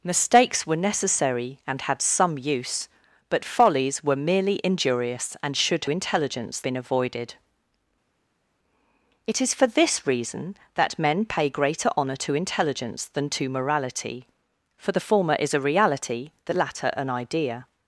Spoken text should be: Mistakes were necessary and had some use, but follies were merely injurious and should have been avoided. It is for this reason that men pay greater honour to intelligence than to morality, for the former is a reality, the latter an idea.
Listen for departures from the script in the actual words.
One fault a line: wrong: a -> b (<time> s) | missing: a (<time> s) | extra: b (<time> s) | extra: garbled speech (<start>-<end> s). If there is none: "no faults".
wrong: have -> intelligence (5.9 s)